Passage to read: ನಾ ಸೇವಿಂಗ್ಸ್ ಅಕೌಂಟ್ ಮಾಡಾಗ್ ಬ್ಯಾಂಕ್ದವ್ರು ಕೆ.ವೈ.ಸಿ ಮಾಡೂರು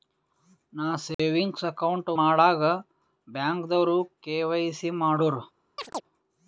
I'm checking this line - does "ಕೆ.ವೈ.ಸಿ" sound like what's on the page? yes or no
yes